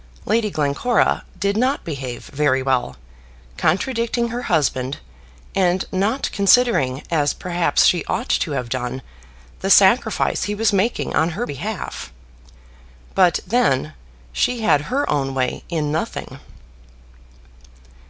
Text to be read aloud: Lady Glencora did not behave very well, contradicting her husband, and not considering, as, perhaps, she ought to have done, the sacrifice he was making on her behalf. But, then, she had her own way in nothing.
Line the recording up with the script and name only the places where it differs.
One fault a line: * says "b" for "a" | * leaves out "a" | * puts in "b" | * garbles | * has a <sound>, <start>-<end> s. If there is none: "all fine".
all fine